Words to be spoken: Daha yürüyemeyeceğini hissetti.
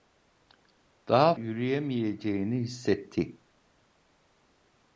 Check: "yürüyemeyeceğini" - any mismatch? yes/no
no